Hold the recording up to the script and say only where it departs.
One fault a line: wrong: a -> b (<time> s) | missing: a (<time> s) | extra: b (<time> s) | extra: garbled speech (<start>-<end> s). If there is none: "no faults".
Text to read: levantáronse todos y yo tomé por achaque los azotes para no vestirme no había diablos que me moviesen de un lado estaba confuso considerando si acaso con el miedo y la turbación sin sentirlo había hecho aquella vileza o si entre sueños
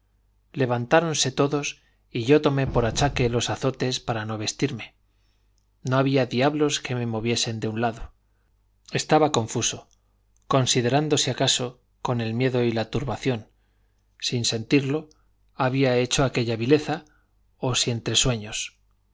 no faults